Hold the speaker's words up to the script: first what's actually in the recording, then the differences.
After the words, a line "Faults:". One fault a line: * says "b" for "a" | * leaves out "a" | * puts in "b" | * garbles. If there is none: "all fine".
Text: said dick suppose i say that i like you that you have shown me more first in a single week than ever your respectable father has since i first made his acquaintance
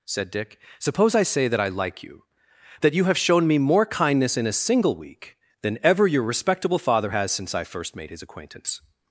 said dick suppose i say that i like you that you have shown me more kindness in a single week than ever your respectable father has since i first made his acquaintance
Faults:
* says "kindness" for "first"